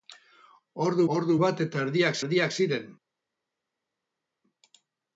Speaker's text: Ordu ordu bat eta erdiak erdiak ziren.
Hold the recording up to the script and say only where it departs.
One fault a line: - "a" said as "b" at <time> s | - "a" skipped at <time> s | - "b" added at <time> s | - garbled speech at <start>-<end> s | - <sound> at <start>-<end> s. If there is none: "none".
none